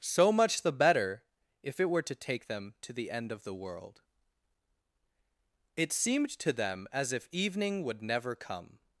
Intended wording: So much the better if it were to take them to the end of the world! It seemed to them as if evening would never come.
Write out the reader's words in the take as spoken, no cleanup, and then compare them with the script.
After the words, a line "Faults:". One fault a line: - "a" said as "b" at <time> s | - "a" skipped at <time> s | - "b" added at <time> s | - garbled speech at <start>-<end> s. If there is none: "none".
So much the better if it were to take them to the end of the world! It seemed to them as if evening would never come.
Faults:
none